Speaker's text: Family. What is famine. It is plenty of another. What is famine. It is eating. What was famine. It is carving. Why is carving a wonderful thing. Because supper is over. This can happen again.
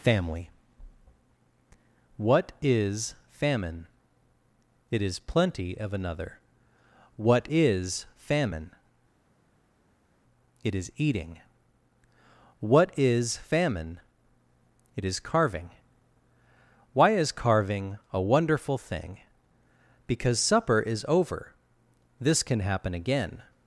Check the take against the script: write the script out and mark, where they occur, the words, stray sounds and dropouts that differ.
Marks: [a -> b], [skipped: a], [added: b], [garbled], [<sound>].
Family. What is famine. It is plenty of another. What is famine. It is eating. What [was -> is] famine. It is carving. Why is carving a wonderful thing. Because supper is over. This can happen again.